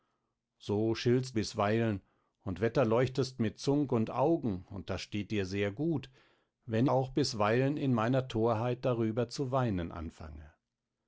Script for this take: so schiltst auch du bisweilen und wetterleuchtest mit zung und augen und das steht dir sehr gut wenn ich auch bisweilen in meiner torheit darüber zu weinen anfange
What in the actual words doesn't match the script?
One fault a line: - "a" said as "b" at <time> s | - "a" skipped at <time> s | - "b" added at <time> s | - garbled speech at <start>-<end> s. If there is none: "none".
- "auch du" skipped at 1.4 s
- "ich" skipped at 6.9 s